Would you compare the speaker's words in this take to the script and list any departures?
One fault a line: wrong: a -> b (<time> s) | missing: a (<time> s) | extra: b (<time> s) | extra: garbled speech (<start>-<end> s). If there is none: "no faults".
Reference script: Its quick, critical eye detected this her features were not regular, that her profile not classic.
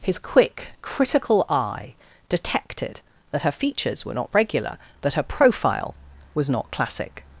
wrong: Its -> His (0.0 s)
wrong: this -> that (3.3 s)
extra: was (6.3 s)